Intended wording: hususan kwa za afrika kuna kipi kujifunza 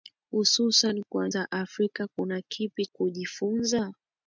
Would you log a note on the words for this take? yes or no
no